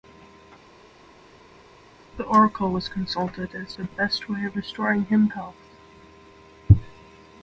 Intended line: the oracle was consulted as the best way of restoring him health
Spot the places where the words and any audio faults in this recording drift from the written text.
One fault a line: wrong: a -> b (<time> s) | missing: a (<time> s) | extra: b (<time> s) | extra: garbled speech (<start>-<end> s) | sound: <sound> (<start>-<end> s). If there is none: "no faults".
no faults